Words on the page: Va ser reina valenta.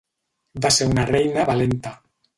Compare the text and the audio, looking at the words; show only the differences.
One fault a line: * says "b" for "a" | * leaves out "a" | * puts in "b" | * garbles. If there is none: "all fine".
* puts in "una"